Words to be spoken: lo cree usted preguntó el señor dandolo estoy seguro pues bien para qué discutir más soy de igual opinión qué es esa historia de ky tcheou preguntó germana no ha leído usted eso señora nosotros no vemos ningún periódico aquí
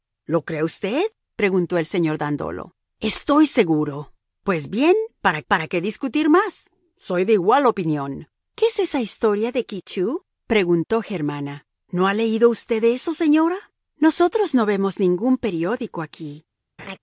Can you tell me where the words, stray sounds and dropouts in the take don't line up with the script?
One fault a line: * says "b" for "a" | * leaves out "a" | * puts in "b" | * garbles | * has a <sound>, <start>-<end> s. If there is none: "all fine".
* puts in "para"
* has a laugh, 16.8-17.0 s